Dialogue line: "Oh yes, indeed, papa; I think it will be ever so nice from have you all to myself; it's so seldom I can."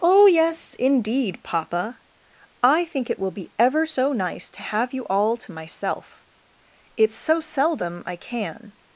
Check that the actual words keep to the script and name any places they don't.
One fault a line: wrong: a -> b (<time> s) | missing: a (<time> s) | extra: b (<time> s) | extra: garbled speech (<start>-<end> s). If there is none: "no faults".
wrong: from -> to (4.5 s)